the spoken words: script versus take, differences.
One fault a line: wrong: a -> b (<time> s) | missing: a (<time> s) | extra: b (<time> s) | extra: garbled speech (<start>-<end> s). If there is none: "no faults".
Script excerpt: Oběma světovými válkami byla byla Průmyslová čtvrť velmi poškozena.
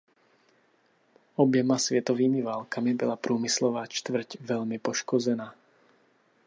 missing: byla (3.1 s)